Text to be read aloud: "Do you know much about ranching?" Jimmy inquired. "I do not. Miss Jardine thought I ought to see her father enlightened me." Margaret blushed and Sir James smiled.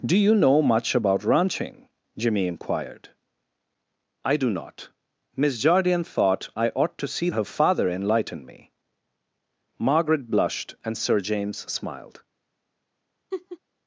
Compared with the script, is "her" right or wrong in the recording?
right